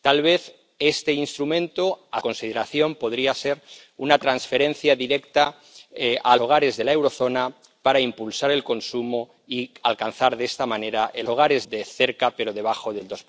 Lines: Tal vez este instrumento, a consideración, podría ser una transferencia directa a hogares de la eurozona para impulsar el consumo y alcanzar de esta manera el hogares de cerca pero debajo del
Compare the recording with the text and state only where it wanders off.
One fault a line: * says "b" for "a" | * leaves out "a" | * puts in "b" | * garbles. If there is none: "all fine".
all fine